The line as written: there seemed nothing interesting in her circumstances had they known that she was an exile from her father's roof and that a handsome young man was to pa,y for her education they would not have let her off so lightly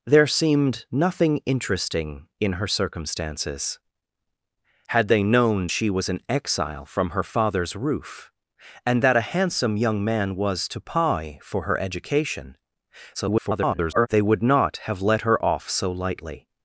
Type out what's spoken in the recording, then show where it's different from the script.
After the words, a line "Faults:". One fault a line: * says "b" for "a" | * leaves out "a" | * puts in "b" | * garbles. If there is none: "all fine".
there seemed nothing interesting in her circumstances had they known she was an exile from her father's roof and that a handsome young man was to pa,y for her education [garbled] they would not have let her off so lightly
Faults:
* leaves out "that"
* garbles